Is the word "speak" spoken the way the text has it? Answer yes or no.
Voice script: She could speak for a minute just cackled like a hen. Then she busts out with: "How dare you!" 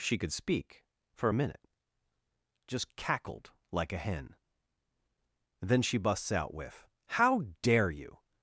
yes